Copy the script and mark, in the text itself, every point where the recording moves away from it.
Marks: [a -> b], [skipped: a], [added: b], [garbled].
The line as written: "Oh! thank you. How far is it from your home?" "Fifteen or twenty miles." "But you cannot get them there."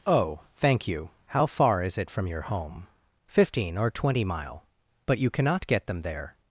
"Oh! thank you. How far is it from your home?" "Fifteen or twenty [miles." -> mile] "But you cannot get them there."